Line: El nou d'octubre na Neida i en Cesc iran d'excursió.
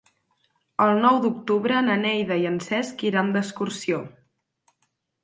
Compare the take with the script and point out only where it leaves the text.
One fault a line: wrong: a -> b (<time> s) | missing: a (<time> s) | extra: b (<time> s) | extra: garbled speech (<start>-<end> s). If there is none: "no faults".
no faults